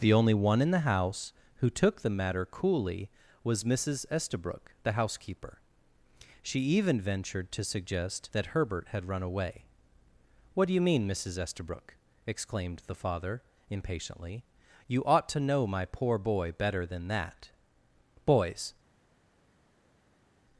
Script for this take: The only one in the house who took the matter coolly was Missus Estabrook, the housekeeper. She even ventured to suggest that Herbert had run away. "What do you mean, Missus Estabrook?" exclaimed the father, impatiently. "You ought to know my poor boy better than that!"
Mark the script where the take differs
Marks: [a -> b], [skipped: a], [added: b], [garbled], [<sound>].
The only one in the house who took the matter coolly was Missus Estabrook, the housekeeper. She even ventured to suggest that Herbert had run away. "What do you mean, Missus Estabrook?" exclaimed the father, impatiently. "You ought to know my poor boy better than that!" [added: Boys]